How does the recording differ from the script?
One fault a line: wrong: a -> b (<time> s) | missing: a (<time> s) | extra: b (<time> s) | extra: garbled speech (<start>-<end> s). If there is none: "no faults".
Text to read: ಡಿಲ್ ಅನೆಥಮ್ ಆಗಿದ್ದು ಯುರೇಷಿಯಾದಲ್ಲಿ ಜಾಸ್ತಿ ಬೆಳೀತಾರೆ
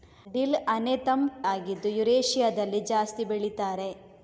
no faults